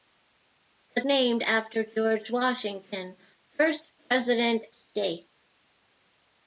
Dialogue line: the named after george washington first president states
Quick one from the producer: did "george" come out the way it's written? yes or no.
yes